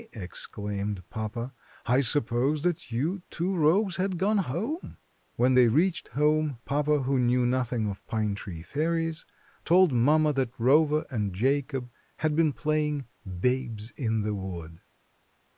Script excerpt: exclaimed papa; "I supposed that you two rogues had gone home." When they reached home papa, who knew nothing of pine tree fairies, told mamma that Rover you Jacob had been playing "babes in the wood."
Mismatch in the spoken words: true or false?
true